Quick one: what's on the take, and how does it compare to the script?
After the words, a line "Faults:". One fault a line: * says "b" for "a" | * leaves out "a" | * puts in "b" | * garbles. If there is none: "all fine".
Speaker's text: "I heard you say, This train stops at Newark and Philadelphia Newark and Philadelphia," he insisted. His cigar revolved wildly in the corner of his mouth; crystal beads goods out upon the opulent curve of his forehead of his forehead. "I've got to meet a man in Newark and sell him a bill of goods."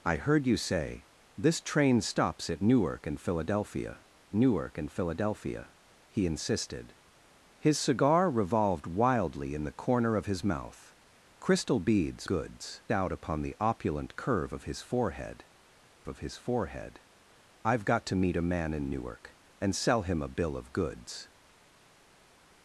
"I heard you say, This train stops at Newark and Philadelphia Newark and Philadelphia," he insisted. His cigar revolved wildly in the corner of his mouth; crystal beads goods out upon the opulent curve of his forehead of his forehead. "I've got to meet a man in Newark and sell him a bill of goods."
Faults:
all fine